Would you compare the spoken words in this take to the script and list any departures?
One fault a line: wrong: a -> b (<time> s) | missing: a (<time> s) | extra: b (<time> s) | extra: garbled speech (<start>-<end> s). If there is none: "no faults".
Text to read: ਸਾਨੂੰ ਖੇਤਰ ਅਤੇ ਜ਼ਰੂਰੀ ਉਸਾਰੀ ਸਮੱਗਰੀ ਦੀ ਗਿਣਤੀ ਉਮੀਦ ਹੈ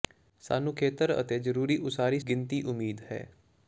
missing: ਸਮੱਗਰੀ ਦੀ (2.2 s)